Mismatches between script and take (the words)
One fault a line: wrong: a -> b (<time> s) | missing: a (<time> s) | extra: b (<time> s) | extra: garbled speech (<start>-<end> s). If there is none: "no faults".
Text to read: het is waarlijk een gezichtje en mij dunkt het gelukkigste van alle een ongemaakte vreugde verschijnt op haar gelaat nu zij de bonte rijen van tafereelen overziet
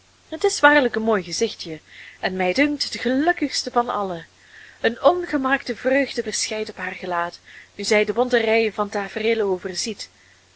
extra: mooi (1.0 s)